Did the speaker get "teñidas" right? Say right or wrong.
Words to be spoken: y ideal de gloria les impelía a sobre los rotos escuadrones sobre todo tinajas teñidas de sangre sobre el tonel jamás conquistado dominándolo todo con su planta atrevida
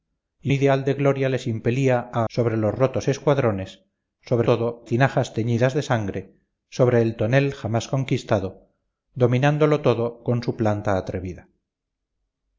right